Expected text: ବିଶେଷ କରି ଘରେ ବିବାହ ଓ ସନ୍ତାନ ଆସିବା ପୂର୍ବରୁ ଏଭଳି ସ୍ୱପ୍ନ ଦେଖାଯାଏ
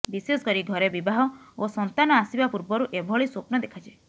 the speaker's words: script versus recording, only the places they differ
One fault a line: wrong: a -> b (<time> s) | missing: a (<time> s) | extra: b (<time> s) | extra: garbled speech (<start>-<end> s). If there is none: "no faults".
no faults